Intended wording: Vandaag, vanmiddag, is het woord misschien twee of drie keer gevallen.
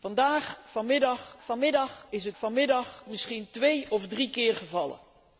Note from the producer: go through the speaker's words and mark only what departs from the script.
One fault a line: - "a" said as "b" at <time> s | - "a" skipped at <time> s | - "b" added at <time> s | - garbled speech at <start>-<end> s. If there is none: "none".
- "vanmiddag" added at 1.4 s
- "woord" said as "vanmiddag" at 2.3 s